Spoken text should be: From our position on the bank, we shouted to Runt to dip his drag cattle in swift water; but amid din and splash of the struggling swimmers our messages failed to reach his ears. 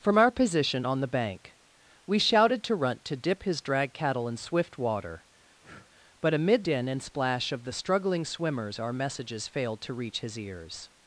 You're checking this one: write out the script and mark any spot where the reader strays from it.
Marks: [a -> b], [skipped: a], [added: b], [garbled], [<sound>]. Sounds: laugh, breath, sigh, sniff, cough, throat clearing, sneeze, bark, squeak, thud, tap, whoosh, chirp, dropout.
From our position on the bank, we shouted to Runt to dip his drag cattle in swift water; [breath] but amid din and splash of the struggling swimmers our messages failed to reach his ears.